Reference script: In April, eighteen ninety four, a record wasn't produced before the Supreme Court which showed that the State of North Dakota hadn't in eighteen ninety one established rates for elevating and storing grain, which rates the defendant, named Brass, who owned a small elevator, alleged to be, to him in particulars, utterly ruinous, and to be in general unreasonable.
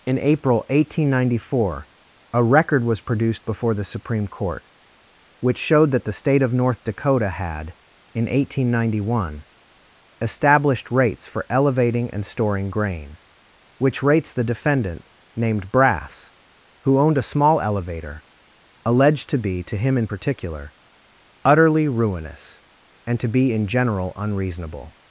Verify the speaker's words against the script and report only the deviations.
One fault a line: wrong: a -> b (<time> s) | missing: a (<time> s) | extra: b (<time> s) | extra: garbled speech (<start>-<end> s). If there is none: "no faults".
wrong: wasn't -> was (2.8 s)
wrong: hadn't -> had (7.3 s)
wrong: particulars -> particular (20.0 s)